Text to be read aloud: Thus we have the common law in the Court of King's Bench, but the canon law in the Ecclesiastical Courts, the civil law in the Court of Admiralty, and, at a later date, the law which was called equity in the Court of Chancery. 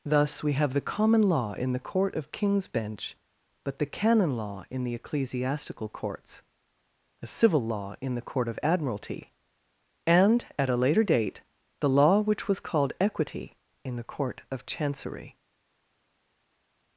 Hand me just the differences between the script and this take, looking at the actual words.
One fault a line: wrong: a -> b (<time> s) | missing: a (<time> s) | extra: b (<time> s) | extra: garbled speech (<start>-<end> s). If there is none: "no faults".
no faults